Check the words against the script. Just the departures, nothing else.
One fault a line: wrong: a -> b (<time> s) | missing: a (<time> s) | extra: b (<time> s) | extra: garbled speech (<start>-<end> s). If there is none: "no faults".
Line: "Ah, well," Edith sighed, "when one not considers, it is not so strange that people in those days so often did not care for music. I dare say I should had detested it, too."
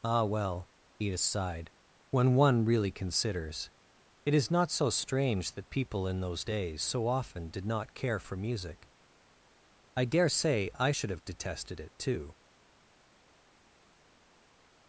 wrong: not -> really (2.6 s)
wrong: had -> have (11.1 s)